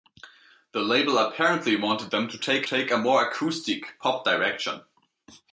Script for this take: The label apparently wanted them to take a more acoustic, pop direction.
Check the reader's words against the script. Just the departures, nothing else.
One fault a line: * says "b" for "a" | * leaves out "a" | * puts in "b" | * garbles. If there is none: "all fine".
* puts in "take"